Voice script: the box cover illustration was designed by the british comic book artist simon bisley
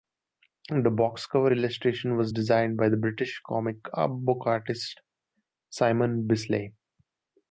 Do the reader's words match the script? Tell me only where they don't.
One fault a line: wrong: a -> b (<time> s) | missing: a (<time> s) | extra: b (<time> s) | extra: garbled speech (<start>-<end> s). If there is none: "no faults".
no faults